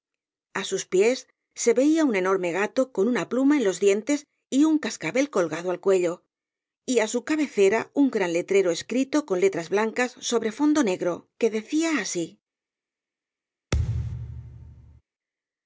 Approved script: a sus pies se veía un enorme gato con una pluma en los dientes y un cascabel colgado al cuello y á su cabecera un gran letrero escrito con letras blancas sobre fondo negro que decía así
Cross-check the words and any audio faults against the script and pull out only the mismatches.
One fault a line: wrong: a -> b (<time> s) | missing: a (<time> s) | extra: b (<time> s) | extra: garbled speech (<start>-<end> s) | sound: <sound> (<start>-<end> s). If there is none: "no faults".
sound: thud (13.7-15.0 s)